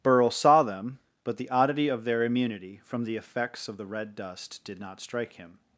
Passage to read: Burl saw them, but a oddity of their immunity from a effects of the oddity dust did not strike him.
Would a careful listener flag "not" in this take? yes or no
no